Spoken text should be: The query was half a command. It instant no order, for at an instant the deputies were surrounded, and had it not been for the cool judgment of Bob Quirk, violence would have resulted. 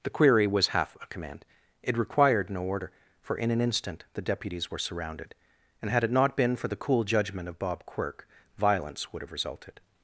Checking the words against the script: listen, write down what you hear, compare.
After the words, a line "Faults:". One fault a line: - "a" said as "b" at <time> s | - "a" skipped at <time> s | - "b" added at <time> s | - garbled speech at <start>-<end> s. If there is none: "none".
The query was half a command. It required no order, for in an instant the deputies were surrounded, and had it not been for the cool judgment of Bob Quirk, violence would have resulted.
Faults:
- "instant" said as "required" at 2.0 s
- "at" said as "in" at 3.4 s